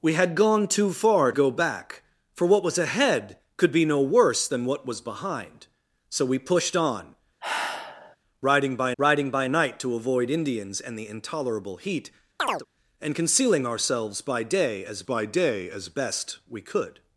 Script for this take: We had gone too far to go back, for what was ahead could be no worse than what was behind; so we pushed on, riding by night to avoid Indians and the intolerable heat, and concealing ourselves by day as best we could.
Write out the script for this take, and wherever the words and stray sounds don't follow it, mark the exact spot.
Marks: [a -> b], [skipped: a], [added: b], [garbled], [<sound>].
We had gone too far [skipped: to] go back, for what was ahead could be no worse than what was behind; so we pushed on, [sigh] riding by [added: riding by] night to avoid Indians and the intolerable heat, [chirp] and concealing ourselves by day as [added: by day as] best we could.